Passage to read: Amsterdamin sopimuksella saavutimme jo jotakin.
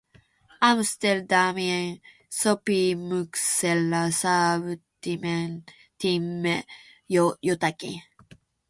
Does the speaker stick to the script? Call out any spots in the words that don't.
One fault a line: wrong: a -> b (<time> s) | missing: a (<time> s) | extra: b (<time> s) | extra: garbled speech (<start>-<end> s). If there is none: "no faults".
no faults